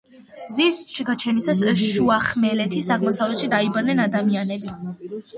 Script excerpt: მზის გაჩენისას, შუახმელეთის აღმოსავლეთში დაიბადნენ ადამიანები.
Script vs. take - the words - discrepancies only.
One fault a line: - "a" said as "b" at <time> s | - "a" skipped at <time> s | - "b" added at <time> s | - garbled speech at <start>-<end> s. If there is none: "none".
none